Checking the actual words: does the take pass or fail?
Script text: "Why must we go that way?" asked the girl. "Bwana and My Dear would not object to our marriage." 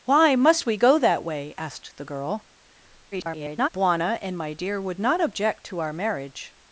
fail